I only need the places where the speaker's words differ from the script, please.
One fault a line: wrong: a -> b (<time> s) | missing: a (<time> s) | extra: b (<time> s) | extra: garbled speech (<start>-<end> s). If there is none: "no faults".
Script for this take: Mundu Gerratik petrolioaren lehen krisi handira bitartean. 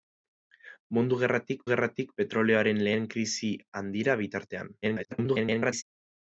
extra: Gerratik (1.7 s)
extra: garbled speech (4.8-5.8 s)